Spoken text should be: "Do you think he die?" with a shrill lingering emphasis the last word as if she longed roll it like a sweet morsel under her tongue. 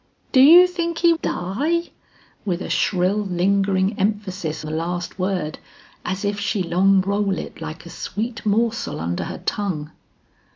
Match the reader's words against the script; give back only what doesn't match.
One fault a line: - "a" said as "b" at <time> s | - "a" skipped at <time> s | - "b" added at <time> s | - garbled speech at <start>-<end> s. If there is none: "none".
none